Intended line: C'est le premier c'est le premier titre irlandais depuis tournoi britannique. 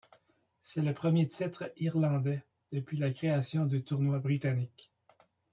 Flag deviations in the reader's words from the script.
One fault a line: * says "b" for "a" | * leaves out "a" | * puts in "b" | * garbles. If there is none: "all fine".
* says "titre irlandais depuis la création du" for "c'est le premier titre irlandais depuis"